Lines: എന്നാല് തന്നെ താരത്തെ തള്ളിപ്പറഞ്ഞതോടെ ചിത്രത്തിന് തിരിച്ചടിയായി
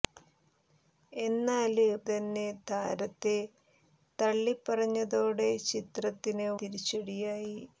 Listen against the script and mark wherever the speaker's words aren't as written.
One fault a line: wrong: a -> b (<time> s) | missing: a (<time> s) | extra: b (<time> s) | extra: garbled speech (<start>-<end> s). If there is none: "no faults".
no faults